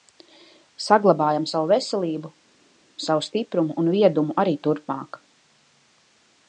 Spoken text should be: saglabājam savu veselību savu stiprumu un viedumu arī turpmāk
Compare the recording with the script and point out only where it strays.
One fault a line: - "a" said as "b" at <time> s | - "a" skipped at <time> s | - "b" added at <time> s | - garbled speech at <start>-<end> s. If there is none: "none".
none